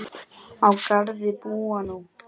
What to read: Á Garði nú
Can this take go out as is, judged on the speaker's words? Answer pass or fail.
fail